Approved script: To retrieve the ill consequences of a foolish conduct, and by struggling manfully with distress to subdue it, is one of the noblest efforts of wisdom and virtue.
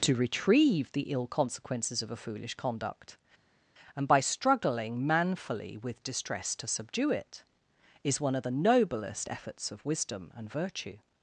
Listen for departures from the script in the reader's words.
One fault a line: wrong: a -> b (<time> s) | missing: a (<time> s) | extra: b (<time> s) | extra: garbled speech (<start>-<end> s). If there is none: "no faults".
no faults